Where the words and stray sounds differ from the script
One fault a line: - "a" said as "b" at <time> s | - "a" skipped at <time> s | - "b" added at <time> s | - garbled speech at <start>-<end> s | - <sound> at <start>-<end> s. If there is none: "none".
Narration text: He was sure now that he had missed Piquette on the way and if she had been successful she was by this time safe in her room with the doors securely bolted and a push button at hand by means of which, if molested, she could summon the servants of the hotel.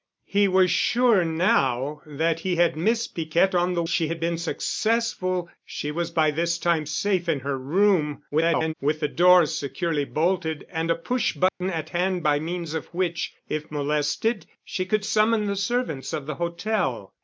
- "way and if" skipped at 3.8 s
- garbled speech at 8.3-8.7 s
- dropout at 11.5-11.6 s